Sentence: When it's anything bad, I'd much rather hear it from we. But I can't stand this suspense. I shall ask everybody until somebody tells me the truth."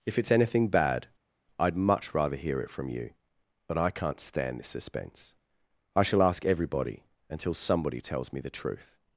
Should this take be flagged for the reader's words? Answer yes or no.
yes